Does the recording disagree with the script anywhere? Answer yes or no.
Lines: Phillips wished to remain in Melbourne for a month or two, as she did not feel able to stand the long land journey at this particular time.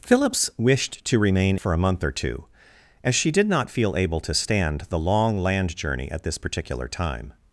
yes